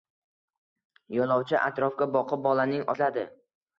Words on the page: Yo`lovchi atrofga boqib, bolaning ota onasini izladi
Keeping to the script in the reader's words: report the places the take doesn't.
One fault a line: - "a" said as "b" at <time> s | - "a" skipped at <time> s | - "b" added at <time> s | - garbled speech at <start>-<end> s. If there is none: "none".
- "ota onasini" skipped at 2.9 s